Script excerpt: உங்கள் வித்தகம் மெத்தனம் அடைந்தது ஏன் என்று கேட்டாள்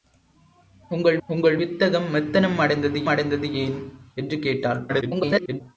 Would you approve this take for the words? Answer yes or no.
no